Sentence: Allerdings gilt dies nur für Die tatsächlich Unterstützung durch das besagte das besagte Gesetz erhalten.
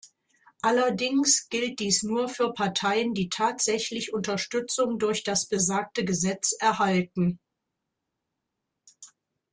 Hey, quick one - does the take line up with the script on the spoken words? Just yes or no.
no